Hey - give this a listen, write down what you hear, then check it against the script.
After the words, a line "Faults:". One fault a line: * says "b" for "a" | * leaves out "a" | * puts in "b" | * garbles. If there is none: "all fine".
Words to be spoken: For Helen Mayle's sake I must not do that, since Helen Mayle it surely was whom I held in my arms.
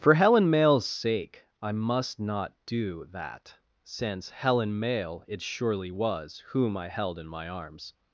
For Helen Mayle's sake I must not do that, since Helen Mayle it surely was whom I held in my arms.
Faults:
all fine